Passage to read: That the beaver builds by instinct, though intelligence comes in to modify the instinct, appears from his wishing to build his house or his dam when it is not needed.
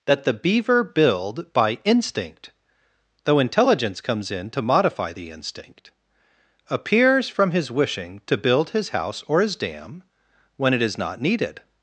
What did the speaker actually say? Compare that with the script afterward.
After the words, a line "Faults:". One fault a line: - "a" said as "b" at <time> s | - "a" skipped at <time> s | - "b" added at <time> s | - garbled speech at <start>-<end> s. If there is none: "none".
That the beaver build by instinct, though intelligence comes in to modify the instinct, appears from his wishing to build his house or his dam when it is not needed.
Faults:
- "builds" said as "build" at 0.8 s